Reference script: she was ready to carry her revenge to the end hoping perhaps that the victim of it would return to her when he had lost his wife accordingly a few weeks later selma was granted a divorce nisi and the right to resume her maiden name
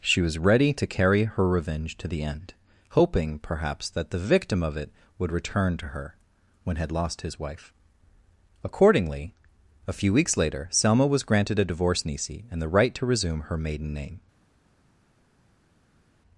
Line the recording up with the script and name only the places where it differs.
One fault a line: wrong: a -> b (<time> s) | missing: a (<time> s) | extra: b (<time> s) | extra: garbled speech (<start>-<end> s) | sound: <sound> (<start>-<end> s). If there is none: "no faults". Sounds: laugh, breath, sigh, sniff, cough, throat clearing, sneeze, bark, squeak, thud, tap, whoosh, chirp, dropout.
missing: he (6.8 s)